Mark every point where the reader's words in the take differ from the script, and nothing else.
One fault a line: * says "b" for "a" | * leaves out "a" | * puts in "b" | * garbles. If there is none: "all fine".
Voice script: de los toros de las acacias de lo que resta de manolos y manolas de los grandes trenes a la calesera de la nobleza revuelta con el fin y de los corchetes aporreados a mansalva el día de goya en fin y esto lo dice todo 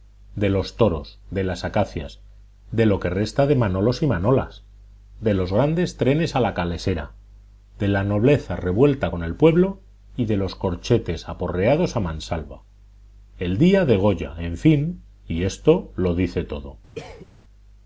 * says "pueblo" for "fin"